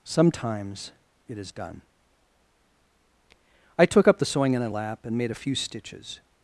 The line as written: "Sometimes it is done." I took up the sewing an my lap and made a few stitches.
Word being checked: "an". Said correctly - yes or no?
no